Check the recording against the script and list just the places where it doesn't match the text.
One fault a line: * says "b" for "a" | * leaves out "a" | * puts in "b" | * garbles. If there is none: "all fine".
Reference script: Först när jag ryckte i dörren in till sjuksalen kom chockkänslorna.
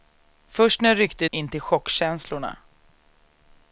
* leaves out "dörren"
* leaves out "sjuksalen kom"